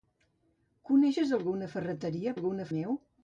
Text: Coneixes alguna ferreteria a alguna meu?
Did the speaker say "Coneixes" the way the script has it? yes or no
yes